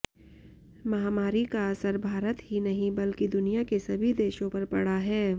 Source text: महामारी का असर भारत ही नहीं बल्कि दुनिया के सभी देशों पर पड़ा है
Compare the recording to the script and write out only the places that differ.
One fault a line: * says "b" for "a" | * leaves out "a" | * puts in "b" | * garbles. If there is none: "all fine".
all fine